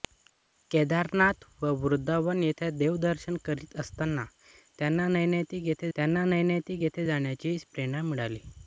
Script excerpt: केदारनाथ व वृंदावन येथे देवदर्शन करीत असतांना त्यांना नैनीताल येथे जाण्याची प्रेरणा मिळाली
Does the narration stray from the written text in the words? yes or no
yes